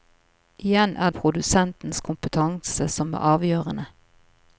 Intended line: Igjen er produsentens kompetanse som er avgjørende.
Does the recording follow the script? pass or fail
pass